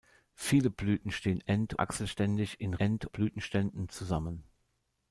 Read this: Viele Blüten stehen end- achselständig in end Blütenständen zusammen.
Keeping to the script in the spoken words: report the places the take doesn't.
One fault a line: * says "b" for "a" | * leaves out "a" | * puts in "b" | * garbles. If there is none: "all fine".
all fine